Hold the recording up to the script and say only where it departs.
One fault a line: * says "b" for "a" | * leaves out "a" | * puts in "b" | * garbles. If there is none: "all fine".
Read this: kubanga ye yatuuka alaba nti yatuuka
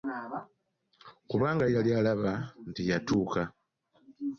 * says "yali" for "yatuuka"